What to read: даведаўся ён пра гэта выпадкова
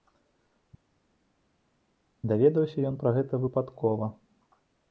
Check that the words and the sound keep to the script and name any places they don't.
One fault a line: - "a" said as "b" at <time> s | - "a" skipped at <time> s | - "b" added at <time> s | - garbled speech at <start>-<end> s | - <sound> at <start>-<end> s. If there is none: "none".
none